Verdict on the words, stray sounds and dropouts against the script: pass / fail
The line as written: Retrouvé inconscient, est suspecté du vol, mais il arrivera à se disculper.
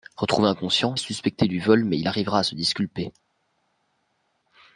pass